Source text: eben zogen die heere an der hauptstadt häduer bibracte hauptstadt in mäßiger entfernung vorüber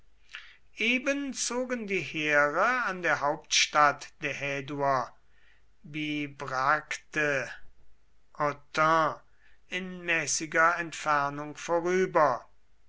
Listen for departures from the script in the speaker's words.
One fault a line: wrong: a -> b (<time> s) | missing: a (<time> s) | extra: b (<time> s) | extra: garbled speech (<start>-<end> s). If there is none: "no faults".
extra: der (4.2 s)
wrong: hauptstadt -> autun (8.3 s)